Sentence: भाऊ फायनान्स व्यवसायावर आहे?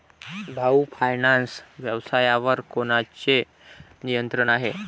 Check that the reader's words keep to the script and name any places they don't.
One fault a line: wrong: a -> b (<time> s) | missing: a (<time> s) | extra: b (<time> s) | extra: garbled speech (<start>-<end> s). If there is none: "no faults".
extra: कोणाचे नियंत्रण (2.7 s)